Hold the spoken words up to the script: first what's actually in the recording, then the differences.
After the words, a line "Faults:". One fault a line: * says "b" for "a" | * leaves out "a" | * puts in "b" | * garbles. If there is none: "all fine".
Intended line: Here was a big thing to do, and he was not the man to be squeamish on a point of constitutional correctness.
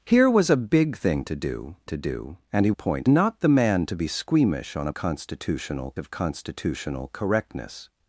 Here was a big thing to do to do, and he point not the man to be squeamish on a constitutional of constitutional correctness.
Faults:
* puts in "to do"
* says "point" for "was"
* says "constitutional" for "point"